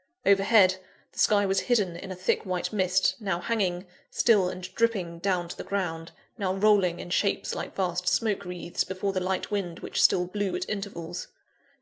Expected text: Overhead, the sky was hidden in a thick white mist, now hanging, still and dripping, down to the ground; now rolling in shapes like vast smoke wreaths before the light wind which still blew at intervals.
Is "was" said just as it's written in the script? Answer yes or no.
yes